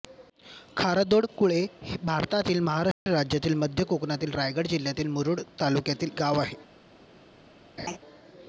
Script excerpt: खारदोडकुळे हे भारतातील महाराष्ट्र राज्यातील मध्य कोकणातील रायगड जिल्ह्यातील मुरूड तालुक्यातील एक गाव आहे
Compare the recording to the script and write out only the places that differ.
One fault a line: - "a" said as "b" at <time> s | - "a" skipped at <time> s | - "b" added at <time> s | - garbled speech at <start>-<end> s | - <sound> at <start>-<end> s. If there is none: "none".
- dropout at 2.9-3.1 s
- "एक" skipped at 6.2 s
- laugh at 7.8-8.0 s